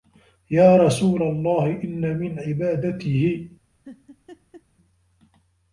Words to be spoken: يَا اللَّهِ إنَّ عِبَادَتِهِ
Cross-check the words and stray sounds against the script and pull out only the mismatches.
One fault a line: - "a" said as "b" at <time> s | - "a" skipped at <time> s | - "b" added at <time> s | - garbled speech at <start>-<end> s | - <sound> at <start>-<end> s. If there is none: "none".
- "رَسُولَ" added at 0.8 s
- "مِنْ" added at 2.2 s
- laugh at 3.8-4.6 s